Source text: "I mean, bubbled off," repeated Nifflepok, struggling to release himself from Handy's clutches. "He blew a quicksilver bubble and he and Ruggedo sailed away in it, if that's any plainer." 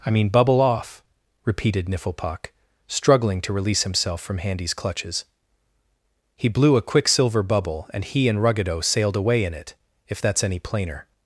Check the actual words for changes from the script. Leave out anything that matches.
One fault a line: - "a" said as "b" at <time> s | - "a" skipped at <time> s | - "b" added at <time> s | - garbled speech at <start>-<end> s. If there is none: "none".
- "bubbled" said as "bubble" at 0.3 s